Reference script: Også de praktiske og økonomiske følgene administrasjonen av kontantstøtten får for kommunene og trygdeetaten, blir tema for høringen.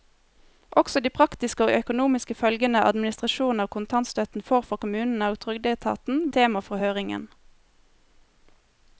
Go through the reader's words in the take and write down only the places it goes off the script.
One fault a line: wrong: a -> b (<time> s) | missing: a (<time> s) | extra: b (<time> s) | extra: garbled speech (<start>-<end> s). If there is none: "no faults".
missing: blir (6.2 s)